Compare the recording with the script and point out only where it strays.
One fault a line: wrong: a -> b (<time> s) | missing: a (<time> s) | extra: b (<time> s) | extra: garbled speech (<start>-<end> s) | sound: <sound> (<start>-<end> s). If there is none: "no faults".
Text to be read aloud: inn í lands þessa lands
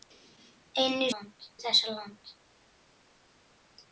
no faults